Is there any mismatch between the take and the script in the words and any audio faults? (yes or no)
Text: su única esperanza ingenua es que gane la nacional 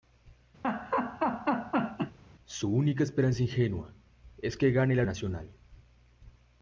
yes